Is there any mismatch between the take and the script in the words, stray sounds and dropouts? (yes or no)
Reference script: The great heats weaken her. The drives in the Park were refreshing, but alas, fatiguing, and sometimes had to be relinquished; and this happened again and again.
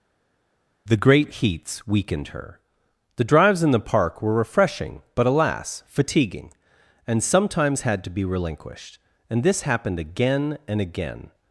yes